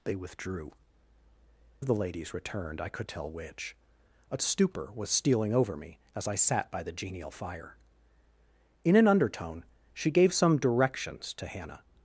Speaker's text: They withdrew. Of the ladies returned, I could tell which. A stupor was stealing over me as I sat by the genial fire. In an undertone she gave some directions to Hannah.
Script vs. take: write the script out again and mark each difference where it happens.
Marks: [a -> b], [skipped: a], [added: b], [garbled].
They withdrew. Of the ladies returned, I could tell which. A stupor was stealing over me as I sat by the genial fire. In an undertone she gave some directions to Hannah.